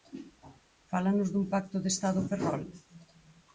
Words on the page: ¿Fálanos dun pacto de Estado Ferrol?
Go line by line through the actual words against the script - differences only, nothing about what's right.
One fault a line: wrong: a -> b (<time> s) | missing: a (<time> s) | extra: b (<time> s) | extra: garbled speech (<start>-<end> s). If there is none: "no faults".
no faults